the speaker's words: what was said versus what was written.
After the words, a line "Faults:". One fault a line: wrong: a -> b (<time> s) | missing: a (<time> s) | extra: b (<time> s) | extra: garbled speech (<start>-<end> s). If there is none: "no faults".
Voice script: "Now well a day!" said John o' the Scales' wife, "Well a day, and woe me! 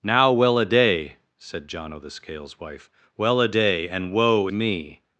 "Now well a day!" said John o' the Scales' wife, "Well a day, and woe me!
Faults:
no faults